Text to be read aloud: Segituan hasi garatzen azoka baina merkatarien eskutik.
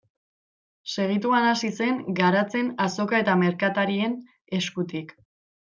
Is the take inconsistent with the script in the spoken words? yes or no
yes